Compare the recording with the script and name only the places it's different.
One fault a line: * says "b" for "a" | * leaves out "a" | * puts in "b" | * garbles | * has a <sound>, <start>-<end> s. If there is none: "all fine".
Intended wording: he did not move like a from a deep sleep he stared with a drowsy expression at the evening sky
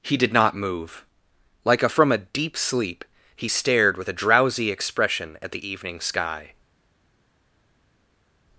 all fine